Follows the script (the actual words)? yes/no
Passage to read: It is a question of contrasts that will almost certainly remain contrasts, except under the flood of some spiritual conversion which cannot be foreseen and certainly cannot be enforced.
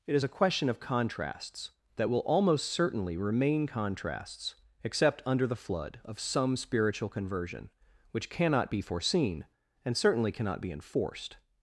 yes